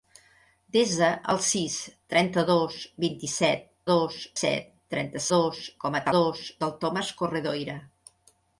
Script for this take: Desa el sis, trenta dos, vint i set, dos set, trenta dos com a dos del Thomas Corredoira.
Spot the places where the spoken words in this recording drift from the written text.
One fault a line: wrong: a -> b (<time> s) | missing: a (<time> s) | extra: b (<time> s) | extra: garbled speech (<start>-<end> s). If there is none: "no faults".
no faults